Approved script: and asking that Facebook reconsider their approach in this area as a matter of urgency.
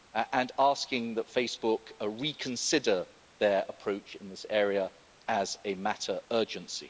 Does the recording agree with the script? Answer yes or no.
no